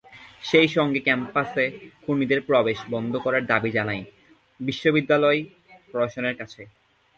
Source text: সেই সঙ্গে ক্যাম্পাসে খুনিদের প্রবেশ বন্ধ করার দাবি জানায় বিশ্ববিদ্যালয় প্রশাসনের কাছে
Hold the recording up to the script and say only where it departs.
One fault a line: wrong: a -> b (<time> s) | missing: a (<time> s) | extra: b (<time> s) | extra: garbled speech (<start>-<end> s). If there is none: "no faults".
no faults